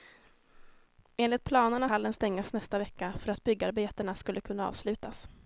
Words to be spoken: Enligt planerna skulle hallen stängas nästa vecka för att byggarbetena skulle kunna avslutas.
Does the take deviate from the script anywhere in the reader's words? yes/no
yes